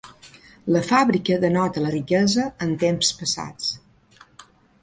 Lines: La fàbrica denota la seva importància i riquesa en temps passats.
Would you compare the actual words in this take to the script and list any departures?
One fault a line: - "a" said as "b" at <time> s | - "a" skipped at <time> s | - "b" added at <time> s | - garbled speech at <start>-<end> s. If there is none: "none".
- "seva importància i" skipped at 1.9 s